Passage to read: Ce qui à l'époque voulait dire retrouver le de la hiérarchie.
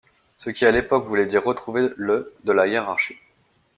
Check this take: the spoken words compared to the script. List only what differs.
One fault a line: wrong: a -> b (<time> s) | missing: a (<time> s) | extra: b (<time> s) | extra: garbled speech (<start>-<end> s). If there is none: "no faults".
no faults